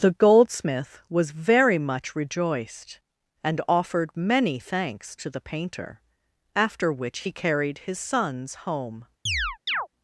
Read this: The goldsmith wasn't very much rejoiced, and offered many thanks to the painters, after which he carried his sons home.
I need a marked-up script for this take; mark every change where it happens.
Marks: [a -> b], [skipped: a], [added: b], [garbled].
The goldsmith [wasn't -> was] very much rejoiced, and offered many thanks to the [painters, -> painter] after which he carried his sons home.